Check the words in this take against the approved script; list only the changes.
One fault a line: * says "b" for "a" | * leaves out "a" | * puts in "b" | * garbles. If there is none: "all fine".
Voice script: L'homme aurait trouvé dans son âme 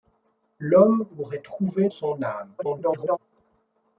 * leaves out "dans"
* garbles